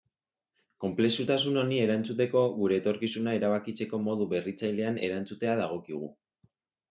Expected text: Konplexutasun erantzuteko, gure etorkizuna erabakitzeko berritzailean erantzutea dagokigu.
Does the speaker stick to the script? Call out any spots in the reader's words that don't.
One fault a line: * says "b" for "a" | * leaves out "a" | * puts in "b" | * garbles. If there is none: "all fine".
* puts in "honi"
* puts in "modu"